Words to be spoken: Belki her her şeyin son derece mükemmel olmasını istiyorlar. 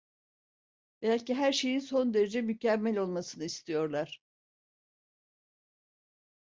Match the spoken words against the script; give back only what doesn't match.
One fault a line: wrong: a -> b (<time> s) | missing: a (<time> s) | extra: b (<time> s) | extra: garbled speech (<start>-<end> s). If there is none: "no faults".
missing: her (1.5 s)